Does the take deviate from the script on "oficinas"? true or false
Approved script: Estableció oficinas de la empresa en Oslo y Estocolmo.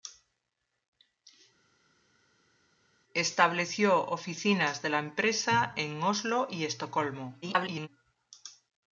false